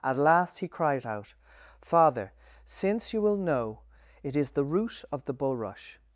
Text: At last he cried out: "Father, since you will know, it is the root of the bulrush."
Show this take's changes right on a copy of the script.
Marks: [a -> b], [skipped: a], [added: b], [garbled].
At last he cried out: "Father, since you will know, it is the root of the bulrush."